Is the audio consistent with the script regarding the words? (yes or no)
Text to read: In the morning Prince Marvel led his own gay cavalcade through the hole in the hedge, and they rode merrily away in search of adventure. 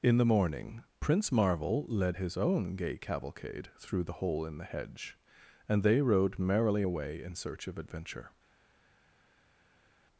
yes